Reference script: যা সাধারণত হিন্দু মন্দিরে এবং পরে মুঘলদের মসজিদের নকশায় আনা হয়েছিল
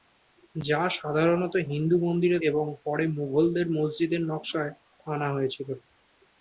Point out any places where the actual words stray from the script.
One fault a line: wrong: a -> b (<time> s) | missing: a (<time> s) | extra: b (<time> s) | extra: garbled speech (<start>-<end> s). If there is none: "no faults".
no faults